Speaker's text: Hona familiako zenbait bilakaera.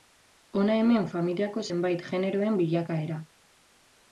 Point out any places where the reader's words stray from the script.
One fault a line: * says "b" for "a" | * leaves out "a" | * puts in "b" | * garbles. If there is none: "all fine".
* puts in "hemen"
* puts in "generoen"